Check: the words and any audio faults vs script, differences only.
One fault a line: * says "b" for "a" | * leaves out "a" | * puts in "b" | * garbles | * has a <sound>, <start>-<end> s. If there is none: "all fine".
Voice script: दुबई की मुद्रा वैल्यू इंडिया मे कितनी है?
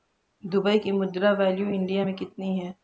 all fine